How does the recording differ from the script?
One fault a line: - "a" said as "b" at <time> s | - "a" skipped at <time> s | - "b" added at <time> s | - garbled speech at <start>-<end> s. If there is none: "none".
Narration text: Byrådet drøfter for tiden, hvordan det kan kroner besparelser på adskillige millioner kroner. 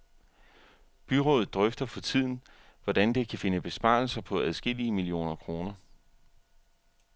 - "kroner" said as "finde" at 3.4 s